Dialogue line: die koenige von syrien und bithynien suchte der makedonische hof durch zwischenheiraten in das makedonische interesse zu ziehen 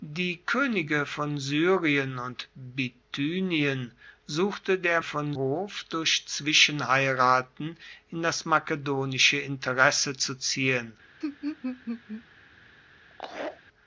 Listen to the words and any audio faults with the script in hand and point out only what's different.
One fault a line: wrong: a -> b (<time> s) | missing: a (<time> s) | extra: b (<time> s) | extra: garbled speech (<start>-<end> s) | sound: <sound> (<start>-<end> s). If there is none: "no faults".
wrong: makedonische -> von (5.0 s)
sound: laugh (11.2-12.2 s)
sound: laugh (13.1-13.6 s)